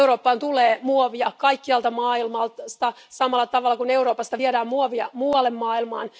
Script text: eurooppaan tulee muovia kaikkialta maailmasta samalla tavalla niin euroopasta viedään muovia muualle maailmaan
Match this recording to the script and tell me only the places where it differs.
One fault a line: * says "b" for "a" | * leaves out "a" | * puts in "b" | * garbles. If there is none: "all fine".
* says "kuin" for "niin"